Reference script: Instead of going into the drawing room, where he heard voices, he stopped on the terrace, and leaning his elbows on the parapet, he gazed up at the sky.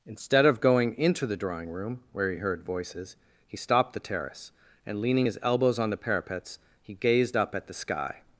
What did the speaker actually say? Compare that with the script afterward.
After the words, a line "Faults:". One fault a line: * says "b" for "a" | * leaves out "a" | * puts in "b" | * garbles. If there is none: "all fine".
Instead of going into the drawing room, where he heard voices, he stopped the terrace, and leaning his elbows on the parapets, he gazed up at the sky.
Faults:
* leaves out "on"
* says "parapets" for "parapet"